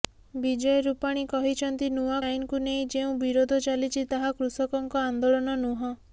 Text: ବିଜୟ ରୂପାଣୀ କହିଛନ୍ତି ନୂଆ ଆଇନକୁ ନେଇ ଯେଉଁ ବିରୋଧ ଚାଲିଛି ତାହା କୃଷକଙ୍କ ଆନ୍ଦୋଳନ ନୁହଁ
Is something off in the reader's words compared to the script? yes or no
no